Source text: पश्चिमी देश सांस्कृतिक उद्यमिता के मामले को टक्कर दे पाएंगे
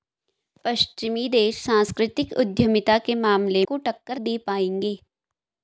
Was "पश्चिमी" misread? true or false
false